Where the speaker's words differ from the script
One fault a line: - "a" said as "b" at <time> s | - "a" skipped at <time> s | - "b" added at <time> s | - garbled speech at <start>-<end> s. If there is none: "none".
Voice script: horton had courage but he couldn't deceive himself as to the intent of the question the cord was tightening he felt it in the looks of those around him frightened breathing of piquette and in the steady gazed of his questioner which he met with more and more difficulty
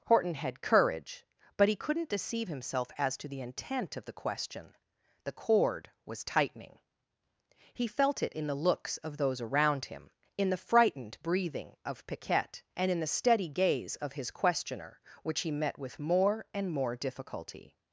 - "in the" added at 10.4 s
- "gazed" said as "gaze" at 13.5 s